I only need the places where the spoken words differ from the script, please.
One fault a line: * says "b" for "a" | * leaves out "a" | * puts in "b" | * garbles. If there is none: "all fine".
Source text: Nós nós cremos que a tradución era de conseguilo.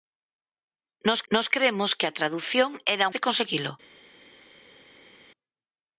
all fine